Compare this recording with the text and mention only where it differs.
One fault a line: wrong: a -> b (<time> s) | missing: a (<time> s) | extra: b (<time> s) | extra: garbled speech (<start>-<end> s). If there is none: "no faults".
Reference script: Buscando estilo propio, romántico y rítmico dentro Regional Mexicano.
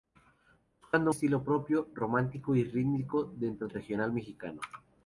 no faults